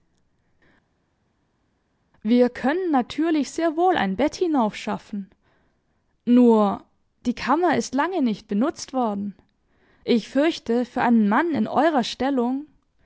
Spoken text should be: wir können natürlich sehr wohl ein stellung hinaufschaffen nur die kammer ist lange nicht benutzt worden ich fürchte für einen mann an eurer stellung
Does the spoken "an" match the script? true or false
false